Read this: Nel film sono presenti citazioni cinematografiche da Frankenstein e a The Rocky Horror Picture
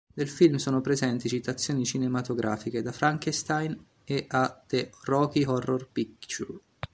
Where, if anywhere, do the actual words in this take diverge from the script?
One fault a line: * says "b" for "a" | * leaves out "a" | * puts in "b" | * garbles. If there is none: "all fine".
all fine